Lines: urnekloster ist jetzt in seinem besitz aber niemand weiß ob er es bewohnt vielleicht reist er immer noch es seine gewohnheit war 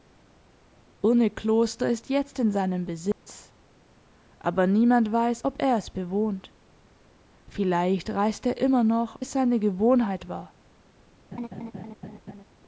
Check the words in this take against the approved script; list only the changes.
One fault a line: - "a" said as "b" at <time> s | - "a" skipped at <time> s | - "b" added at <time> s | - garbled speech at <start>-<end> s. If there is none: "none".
none